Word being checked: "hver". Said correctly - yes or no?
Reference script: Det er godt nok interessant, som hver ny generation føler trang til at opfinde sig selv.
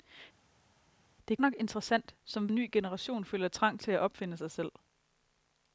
no